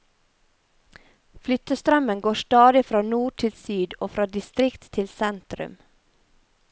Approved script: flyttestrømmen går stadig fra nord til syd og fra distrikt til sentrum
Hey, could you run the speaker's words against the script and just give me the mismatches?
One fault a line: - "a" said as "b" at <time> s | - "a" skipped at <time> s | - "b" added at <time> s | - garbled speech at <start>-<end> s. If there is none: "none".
none